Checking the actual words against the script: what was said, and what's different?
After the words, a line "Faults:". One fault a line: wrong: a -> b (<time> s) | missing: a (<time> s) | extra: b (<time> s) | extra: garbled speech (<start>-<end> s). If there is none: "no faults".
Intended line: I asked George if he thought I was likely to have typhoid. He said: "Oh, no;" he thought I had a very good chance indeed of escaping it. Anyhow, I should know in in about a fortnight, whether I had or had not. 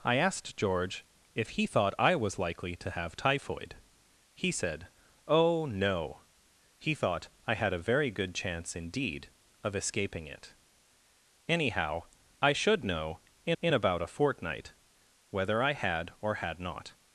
I asked George if he thought I was likely to have typhoid. He said: "Oh, no;" he thought I had a very good chance indeed of escaping it. Anyhow, I should know in in about a fortnight, whether I had or had not.
Faults:
no faults